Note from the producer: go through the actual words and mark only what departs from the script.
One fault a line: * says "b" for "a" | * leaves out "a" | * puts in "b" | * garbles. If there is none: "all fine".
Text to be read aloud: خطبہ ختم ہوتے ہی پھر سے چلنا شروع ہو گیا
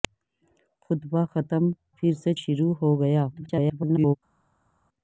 * leaves out "ہوتے ہی"
* leaves out "چلنا"
* garbles